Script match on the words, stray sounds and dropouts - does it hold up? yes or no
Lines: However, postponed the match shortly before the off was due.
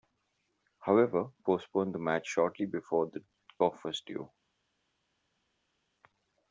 yes